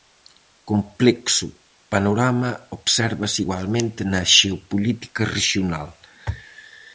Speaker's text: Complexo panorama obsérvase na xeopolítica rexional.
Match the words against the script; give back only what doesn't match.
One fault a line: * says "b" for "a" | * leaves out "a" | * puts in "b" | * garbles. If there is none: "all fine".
* puts in "igualmente"